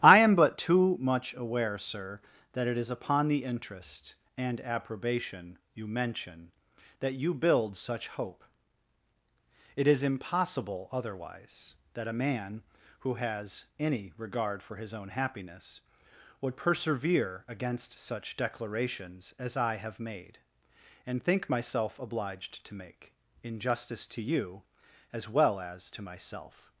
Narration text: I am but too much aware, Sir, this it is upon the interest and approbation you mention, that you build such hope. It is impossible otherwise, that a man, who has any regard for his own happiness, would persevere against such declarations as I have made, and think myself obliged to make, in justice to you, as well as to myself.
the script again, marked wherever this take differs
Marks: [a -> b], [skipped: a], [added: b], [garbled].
I am but too much aware, Sir, [this -> that] it is upon the interest and approbation you mention, that you build such hope. It is impossible otherwise, that a man, who has any regard for his own happiness, would persevere against such declarations as I have made, and think myself obliged to make, in justice to you, as well as to myself.